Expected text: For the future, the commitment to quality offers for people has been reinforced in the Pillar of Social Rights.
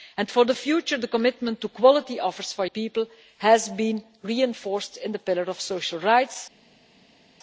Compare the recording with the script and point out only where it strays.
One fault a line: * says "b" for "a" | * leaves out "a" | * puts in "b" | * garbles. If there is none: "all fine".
all fine